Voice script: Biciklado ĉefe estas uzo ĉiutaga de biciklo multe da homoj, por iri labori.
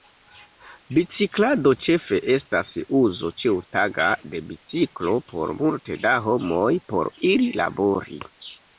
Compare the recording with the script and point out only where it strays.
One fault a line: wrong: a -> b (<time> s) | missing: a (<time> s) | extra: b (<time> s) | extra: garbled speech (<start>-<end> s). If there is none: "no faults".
extra: por (5.3 s)